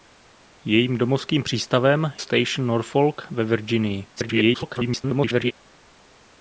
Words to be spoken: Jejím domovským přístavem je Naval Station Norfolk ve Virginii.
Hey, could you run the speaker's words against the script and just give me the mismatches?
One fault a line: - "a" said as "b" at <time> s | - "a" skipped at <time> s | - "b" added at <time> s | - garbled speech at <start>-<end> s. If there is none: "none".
- "je Naval" skipped at 2.1 s
- garbled speech at 4.1-5.5 s